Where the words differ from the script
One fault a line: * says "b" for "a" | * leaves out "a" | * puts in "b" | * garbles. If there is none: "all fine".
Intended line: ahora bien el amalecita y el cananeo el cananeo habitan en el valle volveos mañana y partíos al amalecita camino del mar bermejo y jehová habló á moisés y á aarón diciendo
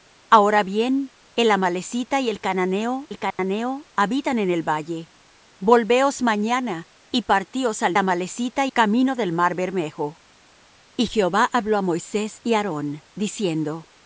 all fine